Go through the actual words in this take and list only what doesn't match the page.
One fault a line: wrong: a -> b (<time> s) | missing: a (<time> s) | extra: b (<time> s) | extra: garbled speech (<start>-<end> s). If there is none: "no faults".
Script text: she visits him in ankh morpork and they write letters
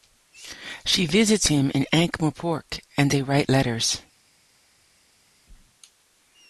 no faults